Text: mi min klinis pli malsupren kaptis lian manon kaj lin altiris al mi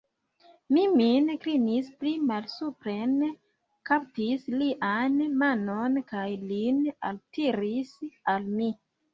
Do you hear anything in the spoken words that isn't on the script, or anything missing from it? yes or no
no